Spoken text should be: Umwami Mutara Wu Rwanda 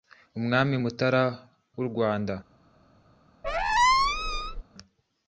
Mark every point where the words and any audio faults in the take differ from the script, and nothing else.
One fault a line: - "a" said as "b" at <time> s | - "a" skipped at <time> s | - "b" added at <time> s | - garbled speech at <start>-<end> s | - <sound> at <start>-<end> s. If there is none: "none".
- squeak at 3.4-4.6 s